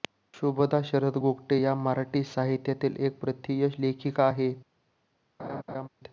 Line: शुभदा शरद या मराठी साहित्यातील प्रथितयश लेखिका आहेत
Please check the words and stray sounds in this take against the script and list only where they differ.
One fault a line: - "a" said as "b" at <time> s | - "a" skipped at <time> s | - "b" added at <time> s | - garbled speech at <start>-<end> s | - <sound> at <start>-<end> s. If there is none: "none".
- "गोगटे" added at 1.2 s
- "एक" added at 3.0 s
- laugh at 5.4-5.9 s